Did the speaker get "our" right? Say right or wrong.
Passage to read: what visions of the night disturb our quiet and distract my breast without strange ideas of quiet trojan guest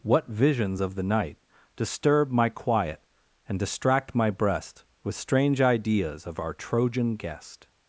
wrong